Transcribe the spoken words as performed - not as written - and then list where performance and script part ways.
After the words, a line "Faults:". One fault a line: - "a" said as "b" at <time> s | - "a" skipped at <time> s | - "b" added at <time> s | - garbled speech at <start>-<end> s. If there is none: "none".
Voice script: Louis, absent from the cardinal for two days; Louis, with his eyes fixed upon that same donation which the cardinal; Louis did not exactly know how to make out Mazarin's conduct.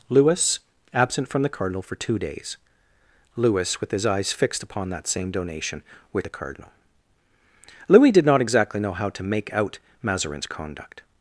Louis, absent from the cardinal for two days; Louis, with his eyes fixed upon that same donation which the cardinal; Louis did not exactly know how to make out Mazarin's conduct.
Faults:
none